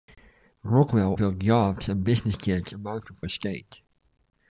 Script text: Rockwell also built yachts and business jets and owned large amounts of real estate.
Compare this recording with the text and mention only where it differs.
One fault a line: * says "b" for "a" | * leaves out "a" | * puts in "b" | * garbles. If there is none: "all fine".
* leaves out "also"
* leaves out "and owned large"
* leaves out "real"